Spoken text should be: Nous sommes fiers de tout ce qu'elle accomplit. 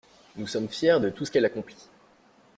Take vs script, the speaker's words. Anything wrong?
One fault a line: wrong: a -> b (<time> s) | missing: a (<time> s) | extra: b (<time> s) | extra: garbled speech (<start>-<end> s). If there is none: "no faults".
no faults